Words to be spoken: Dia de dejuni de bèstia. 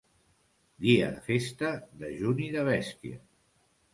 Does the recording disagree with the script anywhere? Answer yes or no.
yes